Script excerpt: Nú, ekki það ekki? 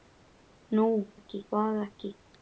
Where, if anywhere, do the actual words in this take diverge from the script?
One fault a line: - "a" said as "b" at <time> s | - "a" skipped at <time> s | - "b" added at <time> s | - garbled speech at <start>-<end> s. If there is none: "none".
none